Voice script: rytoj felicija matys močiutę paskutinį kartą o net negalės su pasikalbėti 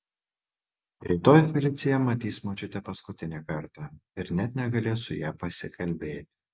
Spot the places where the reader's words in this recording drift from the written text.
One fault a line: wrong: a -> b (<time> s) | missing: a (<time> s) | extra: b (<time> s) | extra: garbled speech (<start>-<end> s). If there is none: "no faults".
wrong: o -> ir (4.2 s)
extra: ja (5.2 s)